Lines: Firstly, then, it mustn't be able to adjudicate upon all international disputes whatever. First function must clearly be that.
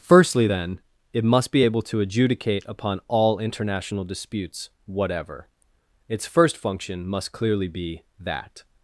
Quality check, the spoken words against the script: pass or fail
fail